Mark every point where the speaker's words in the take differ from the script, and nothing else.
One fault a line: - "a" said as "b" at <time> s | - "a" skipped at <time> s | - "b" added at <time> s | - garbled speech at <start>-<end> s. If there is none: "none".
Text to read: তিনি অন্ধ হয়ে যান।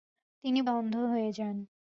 none